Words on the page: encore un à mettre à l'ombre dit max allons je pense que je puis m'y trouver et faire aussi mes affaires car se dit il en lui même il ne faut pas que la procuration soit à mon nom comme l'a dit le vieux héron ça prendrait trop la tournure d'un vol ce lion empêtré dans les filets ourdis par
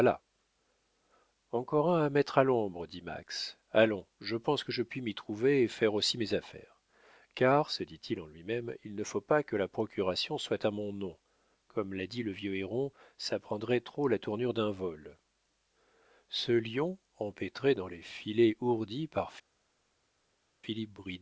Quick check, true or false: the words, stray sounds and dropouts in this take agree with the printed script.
true